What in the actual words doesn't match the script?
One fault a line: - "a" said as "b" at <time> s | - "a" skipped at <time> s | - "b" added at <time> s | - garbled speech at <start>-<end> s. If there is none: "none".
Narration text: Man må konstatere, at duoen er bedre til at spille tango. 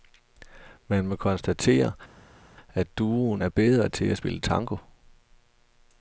none